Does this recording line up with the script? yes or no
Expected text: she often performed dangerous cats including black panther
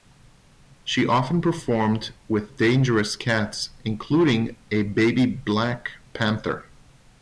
no